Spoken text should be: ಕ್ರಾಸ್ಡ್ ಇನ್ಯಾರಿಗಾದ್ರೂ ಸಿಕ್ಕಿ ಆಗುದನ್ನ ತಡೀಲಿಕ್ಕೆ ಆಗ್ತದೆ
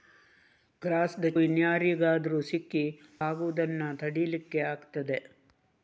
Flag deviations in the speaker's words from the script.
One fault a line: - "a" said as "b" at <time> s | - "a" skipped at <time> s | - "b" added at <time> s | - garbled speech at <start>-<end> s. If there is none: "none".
none